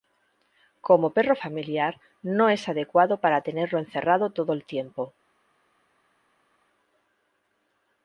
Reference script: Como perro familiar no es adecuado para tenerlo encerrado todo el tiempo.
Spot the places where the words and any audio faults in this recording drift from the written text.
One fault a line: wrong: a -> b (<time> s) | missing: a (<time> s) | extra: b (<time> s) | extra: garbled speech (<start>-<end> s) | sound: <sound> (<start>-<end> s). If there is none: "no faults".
no faults